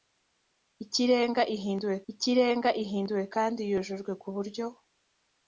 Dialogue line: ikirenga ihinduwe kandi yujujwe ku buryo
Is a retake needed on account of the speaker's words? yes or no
yes